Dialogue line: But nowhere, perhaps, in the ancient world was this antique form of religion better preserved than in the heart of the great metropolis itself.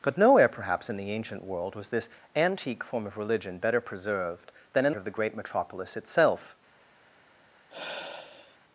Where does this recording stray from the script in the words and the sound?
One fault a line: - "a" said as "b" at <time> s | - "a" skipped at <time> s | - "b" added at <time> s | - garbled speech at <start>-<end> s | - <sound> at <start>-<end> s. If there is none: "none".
- "the heart" skipped at 4.9 s
- sigh at 7.7-8.6 s